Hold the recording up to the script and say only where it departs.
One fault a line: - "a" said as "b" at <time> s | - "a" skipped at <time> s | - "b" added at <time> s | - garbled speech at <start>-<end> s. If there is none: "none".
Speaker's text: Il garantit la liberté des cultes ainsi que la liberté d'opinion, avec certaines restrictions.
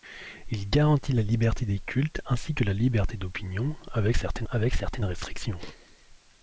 - "avec certaines" added at 4.5 s